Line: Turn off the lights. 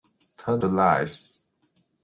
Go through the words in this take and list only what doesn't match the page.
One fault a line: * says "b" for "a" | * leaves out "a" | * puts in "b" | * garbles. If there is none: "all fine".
* leaves out "off"